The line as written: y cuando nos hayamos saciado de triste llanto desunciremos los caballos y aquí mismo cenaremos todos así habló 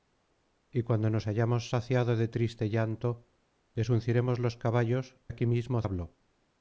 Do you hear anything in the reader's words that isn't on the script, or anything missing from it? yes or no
yes